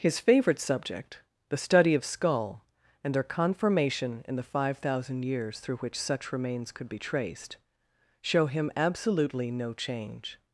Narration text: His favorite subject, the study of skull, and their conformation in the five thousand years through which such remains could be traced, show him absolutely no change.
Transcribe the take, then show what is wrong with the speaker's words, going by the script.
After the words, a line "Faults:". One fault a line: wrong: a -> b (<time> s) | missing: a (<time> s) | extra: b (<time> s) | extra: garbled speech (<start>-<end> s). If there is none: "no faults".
His favorite subject, the study of skull, and their conformation in the five thousand years through which such remains could be traced, show him absolutely no change.
Faults:
no faults